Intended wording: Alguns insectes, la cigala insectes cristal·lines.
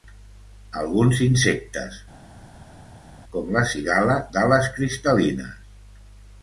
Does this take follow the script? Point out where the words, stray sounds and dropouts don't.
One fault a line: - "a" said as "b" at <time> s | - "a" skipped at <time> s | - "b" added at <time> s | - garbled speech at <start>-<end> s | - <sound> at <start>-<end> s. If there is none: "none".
- "com" added at 3.3 s
- "insectes" said as "d'ales" at 4.4 s